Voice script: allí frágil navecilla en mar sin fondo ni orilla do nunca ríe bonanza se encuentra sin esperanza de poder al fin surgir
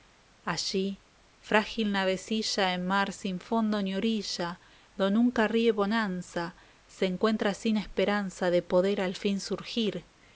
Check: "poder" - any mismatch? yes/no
no